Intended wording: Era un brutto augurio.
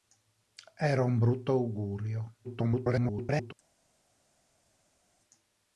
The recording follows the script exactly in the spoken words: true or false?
false